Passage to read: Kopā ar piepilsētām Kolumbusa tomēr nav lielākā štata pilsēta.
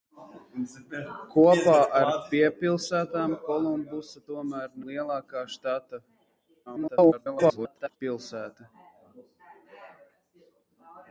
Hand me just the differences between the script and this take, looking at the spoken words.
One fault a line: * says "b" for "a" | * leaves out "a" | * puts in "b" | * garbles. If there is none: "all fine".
* leaves out "nav"
* garbles